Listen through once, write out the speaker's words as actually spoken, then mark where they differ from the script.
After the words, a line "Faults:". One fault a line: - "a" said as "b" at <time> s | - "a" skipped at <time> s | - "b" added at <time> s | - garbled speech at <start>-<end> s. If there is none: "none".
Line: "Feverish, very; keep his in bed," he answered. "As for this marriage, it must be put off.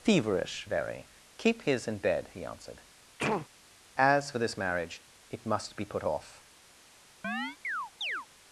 "Feverish, very; keep his in bed," he answered. "As for this marriage, it must be put off.
Faults:
none